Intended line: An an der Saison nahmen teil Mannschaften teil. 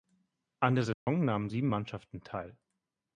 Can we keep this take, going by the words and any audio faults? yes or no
no